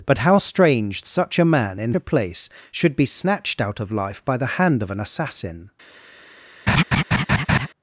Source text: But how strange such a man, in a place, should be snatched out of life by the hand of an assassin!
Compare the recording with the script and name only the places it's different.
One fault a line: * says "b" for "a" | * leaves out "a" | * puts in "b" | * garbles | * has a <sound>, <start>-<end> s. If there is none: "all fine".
* has a laugh, 6.7-7.7 s